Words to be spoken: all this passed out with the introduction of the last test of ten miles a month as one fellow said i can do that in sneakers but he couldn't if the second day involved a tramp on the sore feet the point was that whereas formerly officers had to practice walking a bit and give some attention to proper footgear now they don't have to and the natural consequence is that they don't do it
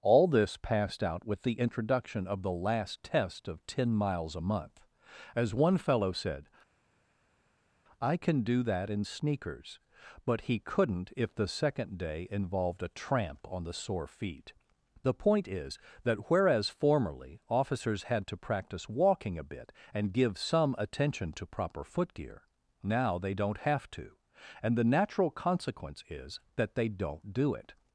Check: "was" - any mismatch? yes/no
yes